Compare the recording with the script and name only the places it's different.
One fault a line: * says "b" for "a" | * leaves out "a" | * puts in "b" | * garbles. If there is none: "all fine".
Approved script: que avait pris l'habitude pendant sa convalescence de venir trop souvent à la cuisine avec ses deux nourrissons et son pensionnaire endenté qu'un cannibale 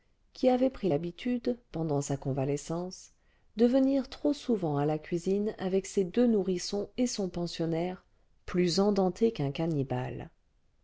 * says "qui" for "que"
* puts in "plus"